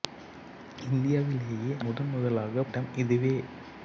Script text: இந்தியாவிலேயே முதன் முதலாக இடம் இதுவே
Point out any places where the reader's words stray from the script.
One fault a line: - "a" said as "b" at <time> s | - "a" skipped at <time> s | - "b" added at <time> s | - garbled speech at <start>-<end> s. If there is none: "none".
none